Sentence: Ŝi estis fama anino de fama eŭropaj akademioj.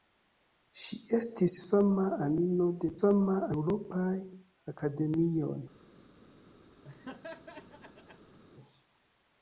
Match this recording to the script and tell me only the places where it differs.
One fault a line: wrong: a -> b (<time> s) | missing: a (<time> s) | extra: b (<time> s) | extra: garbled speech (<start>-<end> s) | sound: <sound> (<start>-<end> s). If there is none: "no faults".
sound: laugh (6.8-8.4 s)